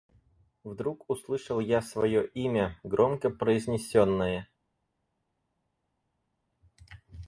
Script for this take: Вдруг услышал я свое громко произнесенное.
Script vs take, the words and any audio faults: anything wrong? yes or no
yes